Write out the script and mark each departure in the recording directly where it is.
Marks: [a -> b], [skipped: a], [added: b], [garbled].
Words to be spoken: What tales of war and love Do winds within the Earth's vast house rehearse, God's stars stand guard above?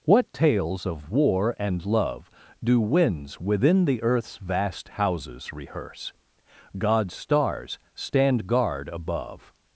What tales of war and love Do winds within the Earth's vast [house -> houses] rehearse, God's stars stand guard above?